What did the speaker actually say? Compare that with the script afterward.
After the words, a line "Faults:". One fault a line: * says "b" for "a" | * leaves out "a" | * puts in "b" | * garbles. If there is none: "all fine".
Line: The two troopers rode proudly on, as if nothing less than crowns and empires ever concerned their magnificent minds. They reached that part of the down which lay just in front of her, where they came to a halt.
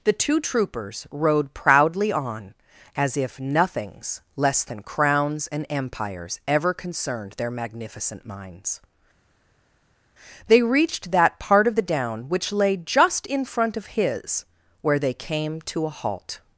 The two troopers rode proudly on, as if nothings less than crowns and empires ever concerned their magnificent minds. They reached that part of the down which lay just in front of his, where they came to a halt.
Faults:
* says "nothings" for "nothing"
* says "his" for "her"